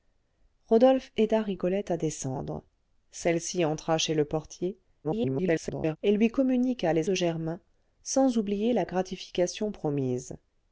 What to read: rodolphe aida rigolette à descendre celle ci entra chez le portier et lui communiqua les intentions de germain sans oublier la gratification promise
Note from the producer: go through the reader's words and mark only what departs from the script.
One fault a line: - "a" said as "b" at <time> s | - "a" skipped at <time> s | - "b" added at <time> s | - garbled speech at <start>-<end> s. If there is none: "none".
- garbled speech at 5.0-6.0 s
- "intentions" skipped at 7.1 s